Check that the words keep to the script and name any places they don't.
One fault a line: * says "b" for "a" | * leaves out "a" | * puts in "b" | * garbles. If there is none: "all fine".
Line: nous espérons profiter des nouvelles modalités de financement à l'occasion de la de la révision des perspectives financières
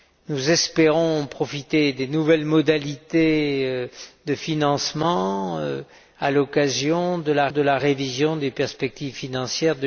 all fine